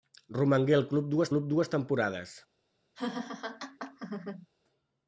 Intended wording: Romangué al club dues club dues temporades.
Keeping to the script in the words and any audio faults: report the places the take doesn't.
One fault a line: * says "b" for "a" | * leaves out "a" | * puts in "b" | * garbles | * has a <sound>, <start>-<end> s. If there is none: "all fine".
* has a laugh, 2.9-4.5 s